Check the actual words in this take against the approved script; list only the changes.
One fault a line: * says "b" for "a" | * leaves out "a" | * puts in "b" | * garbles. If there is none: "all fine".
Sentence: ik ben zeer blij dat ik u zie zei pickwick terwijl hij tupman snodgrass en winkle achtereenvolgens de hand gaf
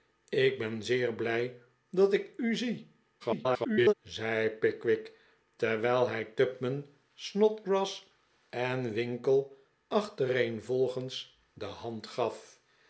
* garbles